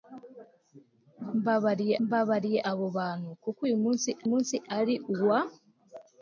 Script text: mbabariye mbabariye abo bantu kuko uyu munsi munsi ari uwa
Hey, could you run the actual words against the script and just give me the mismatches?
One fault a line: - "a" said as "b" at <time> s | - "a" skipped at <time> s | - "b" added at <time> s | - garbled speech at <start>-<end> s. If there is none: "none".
none